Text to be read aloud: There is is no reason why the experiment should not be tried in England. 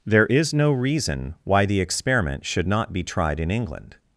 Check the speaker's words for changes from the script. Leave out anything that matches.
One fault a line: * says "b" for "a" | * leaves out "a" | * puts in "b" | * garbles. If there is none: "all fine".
* leaves out "is"